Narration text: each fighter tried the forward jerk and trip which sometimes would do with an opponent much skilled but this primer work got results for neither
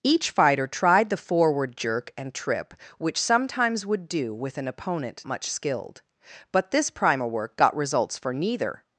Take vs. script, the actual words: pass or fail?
pass